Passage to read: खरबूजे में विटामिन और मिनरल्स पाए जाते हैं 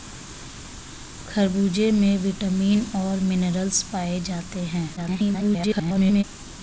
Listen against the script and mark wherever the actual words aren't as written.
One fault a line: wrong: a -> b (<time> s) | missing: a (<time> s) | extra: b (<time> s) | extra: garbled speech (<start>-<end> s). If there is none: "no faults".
extra: garbled speech (5.0-6.2 s)